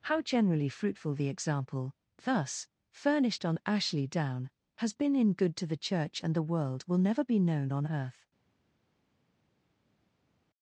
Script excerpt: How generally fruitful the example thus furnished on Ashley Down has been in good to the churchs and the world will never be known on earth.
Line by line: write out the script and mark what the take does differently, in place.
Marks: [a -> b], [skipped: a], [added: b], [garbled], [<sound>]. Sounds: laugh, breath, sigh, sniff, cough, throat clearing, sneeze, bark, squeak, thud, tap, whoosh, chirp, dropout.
How generally fruitful the example thus furnished on Ashley Down has been in good to the [churchs -> church] and the world will never be known on earth.